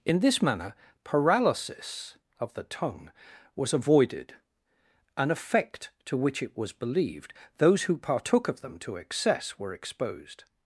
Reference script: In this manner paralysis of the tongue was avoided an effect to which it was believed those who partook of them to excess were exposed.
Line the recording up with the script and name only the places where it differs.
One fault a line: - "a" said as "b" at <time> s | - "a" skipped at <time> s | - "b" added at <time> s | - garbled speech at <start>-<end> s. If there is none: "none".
none